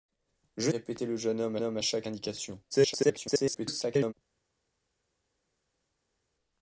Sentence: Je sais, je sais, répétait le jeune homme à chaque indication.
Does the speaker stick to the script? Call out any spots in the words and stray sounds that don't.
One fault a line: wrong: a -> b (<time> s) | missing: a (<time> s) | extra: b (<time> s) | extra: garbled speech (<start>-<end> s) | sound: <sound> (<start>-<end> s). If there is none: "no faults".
missing: sais je sais (0.7 s)
extra: homme (1.6 s)
extra: garbled speech (2.7-4.1 s)